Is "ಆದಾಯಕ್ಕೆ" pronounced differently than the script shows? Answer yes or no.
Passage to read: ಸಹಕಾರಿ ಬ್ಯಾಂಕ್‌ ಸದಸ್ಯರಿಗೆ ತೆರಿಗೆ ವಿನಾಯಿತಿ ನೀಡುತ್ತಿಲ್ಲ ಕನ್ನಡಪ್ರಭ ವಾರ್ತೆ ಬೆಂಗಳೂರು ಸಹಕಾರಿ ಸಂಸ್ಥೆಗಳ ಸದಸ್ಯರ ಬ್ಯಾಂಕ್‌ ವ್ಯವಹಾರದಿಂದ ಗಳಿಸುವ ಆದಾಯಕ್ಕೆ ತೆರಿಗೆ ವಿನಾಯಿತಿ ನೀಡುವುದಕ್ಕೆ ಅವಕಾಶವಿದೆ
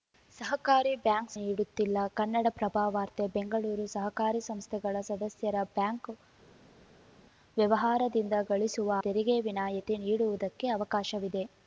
yes